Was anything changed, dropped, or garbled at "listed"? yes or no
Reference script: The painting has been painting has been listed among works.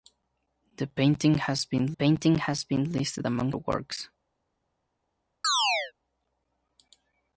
no